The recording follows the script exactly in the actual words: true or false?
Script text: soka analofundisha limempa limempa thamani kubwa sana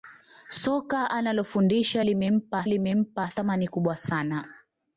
true